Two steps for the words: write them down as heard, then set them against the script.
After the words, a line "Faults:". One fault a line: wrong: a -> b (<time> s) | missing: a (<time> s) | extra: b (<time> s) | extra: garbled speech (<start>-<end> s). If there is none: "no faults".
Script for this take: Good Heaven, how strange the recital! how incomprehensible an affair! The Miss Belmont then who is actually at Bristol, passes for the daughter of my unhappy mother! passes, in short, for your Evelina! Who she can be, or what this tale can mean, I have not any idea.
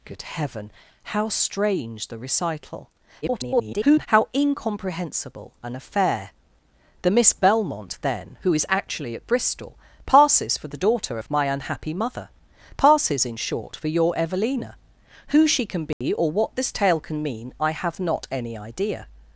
Good Heaven, how strange the recital! [garbled] how incomprehensible an affair! The Miss Belmont then who is actually at Bristol, passes for the daughter of my unhappy mother! passes, in short, for your Evelina! Who she can be, or what this tale can mean, I have not any idea.
Faults:
extra: garbled speech (3.2-4.1 s)